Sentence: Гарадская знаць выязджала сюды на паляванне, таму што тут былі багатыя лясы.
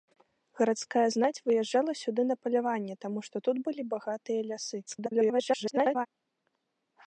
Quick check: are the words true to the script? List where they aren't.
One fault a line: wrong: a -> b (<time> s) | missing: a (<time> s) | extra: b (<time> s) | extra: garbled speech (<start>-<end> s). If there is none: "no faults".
extra: garbled speech (4.9-6.1 s)